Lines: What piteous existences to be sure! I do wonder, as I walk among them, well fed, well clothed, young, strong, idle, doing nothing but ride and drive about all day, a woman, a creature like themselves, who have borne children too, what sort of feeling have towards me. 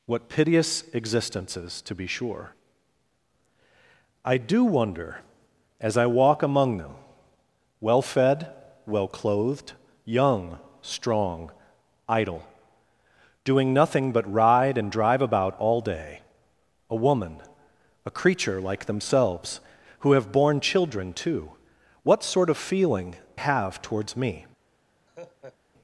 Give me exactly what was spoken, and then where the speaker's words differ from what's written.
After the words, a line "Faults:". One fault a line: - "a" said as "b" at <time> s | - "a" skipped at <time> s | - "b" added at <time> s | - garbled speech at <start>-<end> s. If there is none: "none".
What piteous existences to be sure! I do wonder, as I walk among them, well fed, well clothed, young, strong, idle, doing nothing but ride and drive about all day, a woman, a creature like themselves, who have borne children too, what sort of feeling have towards me.
Faults:
none